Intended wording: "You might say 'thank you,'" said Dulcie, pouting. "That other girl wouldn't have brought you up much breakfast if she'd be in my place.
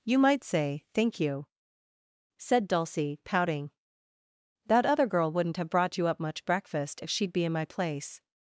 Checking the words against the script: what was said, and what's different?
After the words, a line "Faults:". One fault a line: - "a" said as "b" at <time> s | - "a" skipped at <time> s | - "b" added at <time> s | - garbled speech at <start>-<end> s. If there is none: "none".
"You might say 'thank you,'" said Dulcie, pouting. "That other girl wouldn't have brought you up much breakfast if she'd be in my place.
Faults:
none